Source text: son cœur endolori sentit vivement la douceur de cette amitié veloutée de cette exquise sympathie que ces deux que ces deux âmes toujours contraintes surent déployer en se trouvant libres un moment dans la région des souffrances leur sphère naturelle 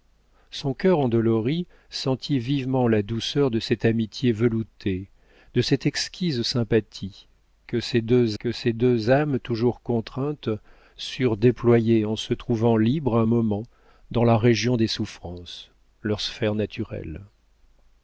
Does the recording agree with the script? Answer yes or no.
yes